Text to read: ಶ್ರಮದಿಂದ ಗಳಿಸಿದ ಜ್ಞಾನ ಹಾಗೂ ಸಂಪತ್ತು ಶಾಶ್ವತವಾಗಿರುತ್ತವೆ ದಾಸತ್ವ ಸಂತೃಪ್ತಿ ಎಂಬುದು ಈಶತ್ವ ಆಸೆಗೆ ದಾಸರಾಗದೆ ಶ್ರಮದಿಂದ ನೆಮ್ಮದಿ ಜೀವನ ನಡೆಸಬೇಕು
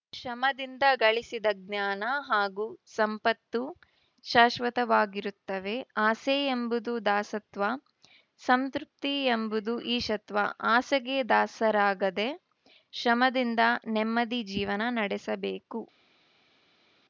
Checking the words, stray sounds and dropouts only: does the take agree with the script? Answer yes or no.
no